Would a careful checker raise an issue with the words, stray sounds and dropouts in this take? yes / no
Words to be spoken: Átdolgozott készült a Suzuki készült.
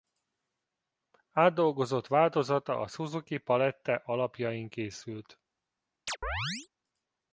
yes